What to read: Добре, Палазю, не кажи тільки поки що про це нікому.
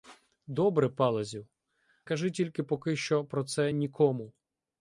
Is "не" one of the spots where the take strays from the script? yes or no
yes